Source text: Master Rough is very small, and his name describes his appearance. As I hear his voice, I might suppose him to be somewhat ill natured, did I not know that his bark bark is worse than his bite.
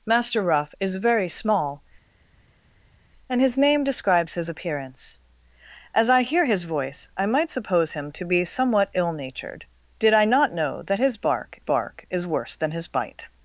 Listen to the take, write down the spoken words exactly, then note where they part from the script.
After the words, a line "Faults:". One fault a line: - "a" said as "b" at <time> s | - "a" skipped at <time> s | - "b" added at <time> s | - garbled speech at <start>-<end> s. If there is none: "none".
Master Rough is very small, and his name describes his appearance. As I hear his voice, I might suppose him to be somewhat ill natured, did I not know that his bark bark is worse than his bite.
Faults:
none